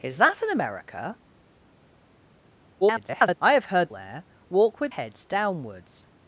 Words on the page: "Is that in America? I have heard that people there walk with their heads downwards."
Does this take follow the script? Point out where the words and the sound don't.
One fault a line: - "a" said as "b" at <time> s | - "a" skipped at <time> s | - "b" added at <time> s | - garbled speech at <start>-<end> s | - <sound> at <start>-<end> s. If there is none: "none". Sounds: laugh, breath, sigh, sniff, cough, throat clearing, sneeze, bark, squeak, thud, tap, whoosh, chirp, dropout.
- garbled speech at 2.8-3.4 s
- "that people" skipped at 3.9 s
- "their" skipped at 4.9 s